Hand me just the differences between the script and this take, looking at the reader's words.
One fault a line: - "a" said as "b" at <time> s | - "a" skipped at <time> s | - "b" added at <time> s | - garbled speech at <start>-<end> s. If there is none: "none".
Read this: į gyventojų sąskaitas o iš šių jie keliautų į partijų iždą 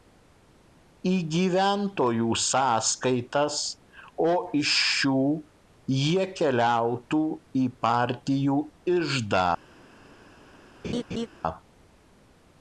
none